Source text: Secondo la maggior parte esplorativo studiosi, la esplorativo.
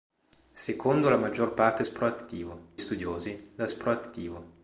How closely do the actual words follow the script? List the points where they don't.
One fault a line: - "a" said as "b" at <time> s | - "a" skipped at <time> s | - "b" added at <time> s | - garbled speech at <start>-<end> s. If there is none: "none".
none